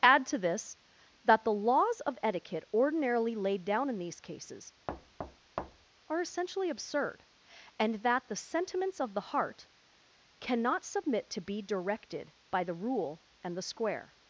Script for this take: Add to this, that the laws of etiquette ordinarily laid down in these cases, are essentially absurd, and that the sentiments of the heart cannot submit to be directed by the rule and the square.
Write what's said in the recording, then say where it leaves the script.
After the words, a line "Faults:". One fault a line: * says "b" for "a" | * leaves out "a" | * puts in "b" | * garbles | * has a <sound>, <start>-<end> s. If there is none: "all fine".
Add to this, that the laws of etiquette ordinarily laid down in these cases, are essentially absurd, and that the sentiments of the heart cannot submit to be directed by the rule and the square.
Faults:
* has a thud, 4.9-5.9 s